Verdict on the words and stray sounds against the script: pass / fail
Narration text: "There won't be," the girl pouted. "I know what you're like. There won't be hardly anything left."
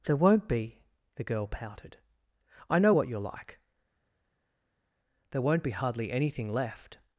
pass